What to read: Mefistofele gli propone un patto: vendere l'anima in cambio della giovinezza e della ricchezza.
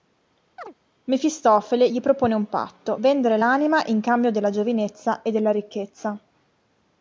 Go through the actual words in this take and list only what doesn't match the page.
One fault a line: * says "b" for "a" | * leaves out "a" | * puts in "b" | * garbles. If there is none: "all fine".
all fine